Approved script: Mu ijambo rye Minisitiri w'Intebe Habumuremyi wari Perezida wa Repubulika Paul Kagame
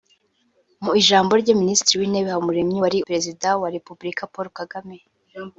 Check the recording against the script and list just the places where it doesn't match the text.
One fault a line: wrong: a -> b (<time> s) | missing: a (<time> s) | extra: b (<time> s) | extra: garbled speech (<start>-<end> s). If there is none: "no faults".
no faults